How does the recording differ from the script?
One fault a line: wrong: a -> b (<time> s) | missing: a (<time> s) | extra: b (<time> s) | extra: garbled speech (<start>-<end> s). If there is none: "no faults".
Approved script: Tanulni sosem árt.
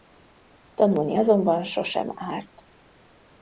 extra: azonban (1.2 s)